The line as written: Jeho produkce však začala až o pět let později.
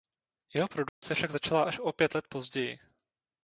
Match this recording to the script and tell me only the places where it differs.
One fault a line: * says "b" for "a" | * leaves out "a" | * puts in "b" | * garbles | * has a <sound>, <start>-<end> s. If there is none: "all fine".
* has a dropout, 0.9-1.0 s